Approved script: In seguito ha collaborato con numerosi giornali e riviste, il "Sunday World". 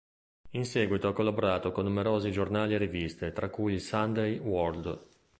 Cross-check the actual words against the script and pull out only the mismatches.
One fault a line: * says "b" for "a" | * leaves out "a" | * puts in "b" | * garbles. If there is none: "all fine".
* puts in "tra cui"